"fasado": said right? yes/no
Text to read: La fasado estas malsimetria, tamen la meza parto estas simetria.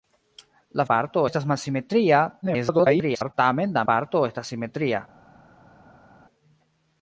no